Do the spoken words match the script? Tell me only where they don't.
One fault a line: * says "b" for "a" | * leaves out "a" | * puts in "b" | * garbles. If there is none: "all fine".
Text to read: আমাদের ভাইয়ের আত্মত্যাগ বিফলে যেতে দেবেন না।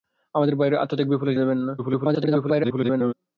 * leaves out "যেতে"
* garbles